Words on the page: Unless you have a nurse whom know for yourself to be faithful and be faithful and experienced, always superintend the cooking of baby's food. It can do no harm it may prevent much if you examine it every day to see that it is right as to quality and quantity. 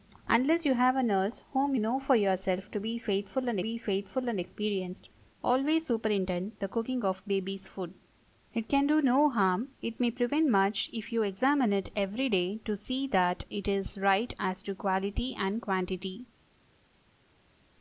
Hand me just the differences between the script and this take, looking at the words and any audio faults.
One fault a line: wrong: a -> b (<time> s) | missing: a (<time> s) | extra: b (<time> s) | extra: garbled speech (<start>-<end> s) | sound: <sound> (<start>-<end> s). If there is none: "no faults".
no faults